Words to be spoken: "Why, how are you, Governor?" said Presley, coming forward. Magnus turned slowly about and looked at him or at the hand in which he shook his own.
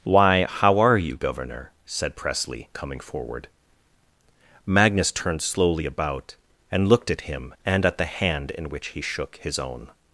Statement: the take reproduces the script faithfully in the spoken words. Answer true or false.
false